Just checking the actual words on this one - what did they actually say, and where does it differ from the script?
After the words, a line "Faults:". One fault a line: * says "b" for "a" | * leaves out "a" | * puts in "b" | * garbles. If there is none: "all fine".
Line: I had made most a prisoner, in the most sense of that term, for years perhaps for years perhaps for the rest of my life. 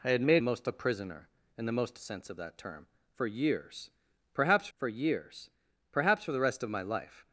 I had made most a prisoner, in the most sense of that term, for years perhaps for years perhaps for the rest of my life.
Faults:
all fine